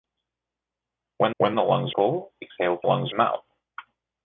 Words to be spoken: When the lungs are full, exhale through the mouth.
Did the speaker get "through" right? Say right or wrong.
wrong